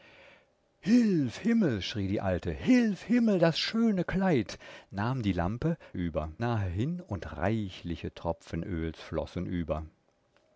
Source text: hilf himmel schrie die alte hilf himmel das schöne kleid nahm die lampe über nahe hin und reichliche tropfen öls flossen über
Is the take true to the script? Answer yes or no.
yes